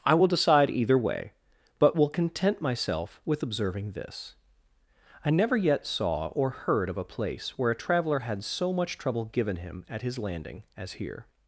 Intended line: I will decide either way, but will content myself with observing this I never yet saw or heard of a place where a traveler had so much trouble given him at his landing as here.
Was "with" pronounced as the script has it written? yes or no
yes